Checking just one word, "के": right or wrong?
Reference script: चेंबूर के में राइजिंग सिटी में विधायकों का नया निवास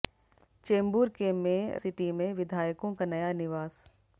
right